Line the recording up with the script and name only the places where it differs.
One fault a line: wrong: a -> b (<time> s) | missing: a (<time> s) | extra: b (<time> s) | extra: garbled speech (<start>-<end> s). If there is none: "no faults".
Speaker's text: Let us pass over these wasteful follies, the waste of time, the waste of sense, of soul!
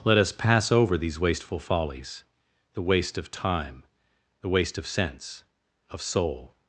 no faults